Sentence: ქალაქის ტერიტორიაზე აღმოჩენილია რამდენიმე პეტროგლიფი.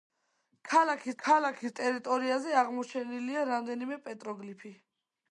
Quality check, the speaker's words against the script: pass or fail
fail